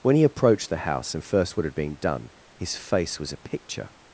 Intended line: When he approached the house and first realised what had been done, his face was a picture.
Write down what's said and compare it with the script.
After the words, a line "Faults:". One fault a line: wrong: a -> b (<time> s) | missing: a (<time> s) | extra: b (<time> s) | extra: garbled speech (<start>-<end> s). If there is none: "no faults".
When he approached the house and first what had been done, his face was a picture.
Faults:
missing: realised (1.6 s)